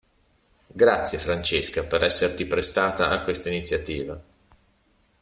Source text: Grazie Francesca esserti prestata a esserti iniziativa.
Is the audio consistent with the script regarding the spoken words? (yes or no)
no